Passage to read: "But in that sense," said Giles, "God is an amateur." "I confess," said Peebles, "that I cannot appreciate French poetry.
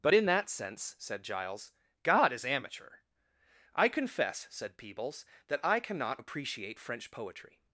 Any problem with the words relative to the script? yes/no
yes